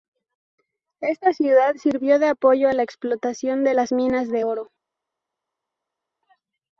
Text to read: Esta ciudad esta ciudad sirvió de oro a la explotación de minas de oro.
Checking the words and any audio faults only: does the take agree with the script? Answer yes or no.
no